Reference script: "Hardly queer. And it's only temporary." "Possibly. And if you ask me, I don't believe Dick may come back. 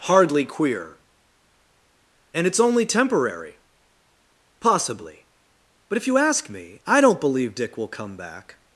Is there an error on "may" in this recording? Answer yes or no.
yes